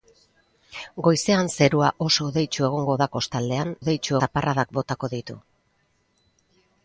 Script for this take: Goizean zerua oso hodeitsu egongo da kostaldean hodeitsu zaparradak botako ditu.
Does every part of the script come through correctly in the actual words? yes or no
yes